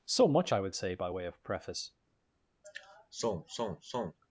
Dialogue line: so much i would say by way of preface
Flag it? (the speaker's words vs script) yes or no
no